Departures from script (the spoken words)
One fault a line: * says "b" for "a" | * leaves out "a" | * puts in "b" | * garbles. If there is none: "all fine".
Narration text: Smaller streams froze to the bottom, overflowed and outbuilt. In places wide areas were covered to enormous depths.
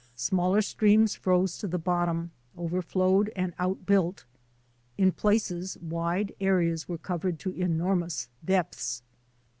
all fine